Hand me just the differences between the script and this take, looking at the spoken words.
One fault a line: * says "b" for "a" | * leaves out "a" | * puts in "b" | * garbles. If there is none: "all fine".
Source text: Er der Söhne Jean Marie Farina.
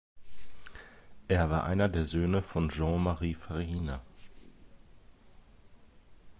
* puts in "war einer"
* puts in "von"